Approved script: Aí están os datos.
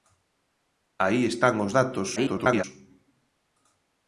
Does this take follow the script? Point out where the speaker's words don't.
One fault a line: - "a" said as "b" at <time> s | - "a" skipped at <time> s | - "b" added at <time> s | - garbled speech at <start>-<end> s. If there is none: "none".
- garbled speech at 2.2-2.6 s